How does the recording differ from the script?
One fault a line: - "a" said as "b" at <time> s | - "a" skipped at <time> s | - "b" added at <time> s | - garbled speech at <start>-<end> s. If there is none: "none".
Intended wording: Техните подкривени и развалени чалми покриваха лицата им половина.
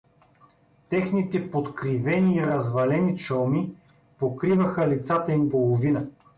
none